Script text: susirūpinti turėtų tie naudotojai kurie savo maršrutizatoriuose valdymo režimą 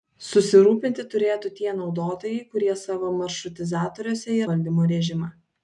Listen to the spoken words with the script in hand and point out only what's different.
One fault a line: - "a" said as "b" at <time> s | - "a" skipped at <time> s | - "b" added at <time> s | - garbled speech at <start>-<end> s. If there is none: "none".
none